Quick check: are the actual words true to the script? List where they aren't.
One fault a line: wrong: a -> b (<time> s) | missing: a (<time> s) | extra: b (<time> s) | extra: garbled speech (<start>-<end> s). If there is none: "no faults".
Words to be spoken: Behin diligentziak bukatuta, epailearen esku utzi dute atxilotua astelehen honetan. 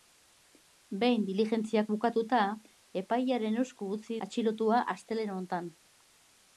missing: dute (4.2 s)